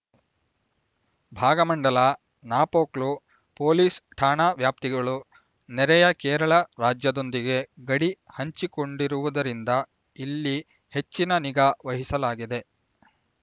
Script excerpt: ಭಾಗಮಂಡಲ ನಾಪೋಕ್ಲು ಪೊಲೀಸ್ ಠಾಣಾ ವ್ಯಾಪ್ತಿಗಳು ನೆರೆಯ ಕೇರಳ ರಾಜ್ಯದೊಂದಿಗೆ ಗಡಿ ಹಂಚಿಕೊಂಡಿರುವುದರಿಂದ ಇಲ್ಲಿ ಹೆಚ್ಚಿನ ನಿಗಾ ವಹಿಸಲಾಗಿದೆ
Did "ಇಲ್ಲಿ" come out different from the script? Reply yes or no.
no